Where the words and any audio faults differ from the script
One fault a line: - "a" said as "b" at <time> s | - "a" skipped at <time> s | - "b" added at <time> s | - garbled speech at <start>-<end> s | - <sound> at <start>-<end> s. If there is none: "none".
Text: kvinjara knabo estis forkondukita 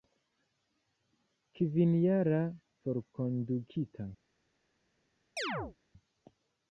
- "knabo estis" skipped at 2.4 s
- chirp at 5.4-5.8 s